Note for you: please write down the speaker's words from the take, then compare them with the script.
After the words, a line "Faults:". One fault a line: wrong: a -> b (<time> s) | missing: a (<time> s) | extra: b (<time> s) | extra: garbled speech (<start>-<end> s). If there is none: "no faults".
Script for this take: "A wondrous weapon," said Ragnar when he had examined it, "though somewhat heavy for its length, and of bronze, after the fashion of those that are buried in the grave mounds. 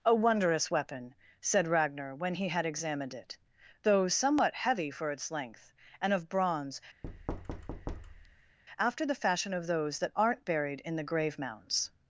"A wondrous weapon," said Ragnar when he had examined it, "though somewhat heavy for its length, and of bronze, after the fashion of those that aren't buried in the grave mounds.
Faults:
wrong: are -> aren't (10.1 s)